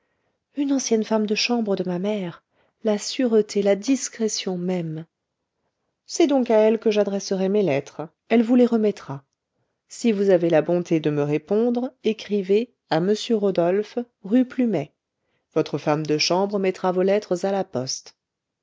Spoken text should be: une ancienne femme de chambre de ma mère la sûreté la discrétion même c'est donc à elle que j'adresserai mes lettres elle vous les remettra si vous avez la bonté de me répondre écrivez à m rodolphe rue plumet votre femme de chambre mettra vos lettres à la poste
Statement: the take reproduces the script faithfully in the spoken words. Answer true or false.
true